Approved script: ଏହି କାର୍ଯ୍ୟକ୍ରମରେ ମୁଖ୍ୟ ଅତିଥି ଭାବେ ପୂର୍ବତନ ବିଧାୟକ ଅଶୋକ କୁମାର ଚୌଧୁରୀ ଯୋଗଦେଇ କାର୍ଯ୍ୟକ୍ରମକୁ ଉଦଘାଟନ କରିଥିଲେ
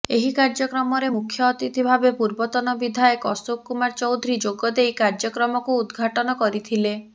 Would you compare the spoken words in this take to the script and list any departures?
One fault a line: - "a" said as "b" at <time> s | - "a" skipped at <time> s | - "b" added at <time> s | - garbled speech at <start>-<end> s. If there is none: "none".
none